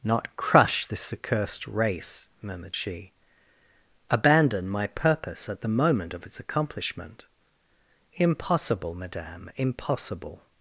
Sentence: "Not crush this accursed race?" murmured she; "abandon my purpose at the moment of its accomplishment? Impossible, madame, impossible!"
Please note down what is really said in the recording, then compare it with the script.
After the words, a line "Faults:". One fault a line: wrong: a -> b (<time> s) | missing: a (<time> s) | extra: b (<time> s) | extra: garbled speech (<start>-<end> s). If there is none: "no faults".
"Not crush this accursed race?" murmured she; "abandon my purpose at the moment of its accomplishment? Impossible, madame, impossible!"
Faults:
no faults